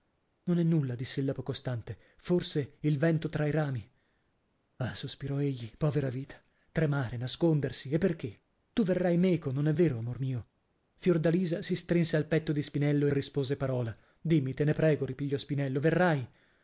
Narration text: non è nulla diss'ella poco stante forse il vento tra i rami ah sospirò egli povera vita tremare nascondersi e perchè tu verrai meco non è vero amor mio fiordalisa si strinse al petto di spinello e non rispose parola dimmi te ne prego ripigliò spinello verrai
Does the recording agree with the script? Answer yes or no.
no